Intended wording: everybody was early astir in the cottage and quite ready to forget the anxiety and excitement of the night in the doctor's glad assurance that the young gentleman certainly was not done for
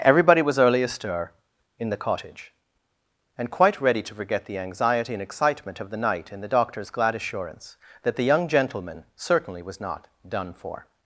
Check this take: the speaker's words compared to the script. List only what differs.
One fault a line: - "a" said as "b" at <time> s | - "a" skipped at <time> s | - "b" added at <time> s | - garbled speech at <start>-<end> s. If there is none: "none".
none